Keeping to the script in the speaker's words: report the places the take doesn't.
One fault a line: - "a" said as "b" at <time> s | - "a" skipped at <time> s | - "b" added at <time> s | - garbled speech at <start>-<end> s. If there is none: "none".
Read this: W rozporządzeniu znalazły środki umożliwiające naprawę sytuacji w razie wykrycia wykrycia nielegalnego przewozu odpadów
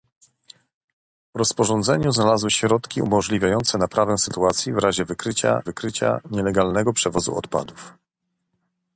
none